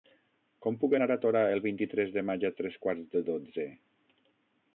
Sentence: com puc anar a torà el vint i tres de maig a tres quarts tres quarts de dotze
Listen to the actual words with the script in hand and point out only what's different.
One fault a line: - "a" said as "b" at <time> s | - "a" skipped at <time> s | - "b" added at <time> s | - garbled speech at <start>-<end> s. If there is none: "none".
- "tres quarts" skipped at 3.1 s